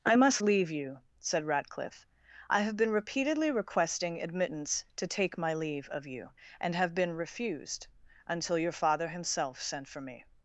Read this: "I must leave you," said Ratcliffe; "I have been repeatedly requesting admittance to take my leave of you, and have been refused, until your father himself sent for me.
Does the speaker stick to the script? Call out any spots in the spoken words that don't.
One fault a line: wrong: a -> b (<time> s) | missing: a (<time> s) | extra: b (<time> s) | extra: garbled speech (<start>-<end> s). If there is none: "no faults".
no faults